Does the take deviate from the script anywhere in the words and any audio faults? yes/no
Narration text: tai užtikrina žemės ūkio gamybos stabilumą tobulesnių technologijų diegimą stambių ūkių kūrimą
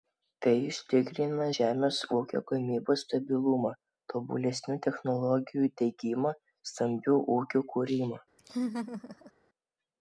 yes